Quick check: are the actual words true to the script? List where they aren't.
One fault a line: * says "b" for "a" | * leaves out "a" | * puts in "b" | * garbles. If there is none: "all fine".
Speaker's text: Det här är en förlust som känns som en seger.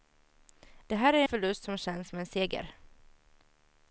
* leaves out "en"